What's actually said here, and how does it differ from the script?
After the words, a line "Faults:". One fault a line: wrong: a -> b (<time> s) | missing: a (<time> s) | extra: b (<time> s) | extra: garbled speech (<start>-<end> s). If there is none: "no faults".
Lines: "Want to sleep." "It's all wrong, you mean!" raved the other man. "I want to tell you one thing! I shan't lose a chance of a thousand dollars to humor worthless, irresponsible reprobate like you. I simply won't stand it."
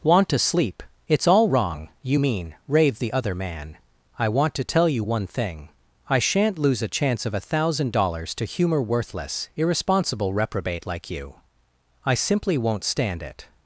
"Want to sleep." "It's all wrong, you mean!" raved the other man. "I want to tell you one thing! I shan't lose a chance of a thousand dollars to humor worthless, irresponsible reprobate like you. I simply won't stand it."
Faults:
no faults